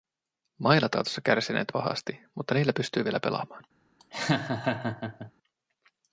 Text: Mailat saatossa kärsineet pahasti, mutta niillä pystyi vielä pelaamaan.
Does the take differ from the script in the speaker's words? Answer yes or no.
no